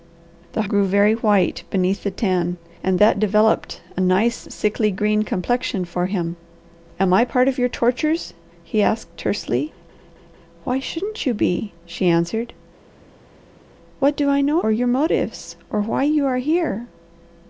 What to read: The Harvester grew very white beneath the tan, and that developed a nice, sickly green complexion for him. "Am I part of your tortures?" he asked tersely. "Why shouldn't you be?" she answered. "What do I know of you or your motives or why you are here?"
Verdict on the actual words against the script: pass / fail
fail